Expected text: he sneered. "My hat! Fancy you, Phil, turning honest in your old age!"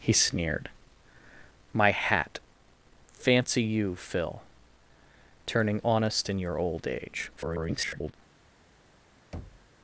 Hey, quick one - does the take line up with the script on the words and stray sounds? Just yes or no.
no